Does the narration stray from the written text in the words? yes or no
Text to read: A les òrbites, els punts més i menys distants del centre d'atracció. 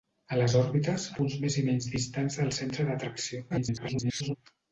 yes